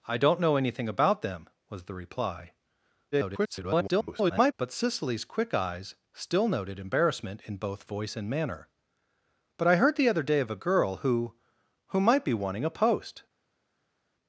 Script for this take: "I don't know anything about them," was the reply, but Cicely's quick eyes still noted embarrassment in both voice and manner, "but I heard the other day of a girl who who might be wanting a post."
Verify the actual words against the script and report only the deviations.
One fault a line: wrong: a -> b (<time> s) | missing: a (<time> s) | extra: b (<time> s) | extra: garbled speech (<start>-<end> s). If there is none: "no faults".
extra: garbled speech (3.1-4.5 s)